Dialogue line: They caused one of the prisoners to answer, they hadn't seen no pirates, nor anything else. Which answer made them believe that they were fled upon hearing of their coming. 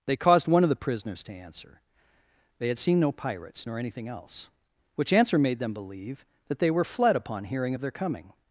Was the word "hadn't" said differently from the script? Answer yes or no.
yes